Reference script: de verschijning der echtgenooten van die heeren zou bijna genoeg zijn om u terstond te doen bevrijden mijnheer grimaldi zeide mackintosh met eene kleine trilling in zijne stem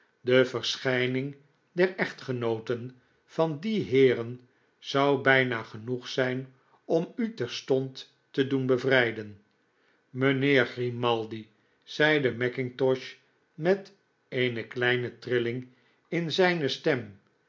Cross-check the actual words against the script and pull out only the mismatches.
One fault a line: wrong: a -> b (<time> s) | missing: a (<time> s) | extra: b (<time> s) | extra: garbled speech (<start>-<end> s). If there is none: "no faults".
no faults